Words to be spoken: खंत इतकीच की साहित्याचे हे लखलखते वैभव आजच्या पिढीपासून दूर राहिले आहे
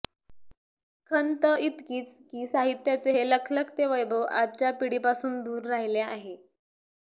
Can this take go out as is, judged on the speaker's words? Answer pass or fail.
pass